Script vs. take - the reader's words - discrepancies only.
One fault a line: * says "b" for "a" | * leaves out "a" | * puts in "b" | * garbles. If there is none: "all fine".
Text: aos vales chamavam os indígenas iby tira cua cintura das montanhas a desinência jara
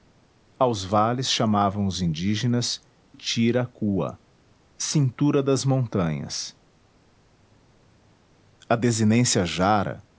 * leaves out "iby"